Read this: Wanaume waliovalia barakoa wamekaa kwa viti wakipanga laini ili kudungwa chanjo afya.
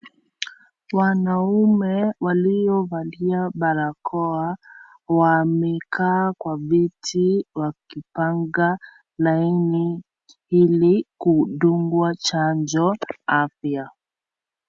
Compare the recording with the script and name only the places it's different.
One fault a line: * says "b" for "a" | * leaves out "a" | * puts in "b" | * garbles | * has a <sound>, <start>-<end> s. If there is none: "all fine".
all fine